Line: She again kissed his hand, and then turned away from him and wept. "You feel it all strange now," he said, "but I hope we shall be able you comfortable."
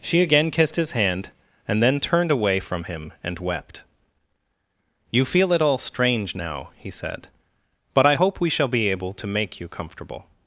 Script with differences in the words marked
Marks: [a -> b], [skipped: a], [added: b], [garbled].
She again kissed his hand, and then turned away from him and wept. "You feel it all strange now," he said, "but I hope we shall be able [added: to make] you comfortable."